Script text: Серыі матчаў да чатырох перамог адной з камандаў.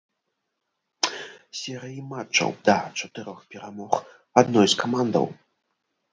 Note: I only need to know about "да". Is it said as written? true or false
true